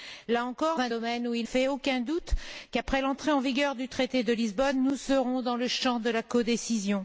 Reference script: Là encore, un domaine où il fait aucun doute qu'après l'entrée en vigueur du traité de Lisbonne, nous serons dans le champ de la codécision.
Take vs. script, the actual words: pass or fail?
pass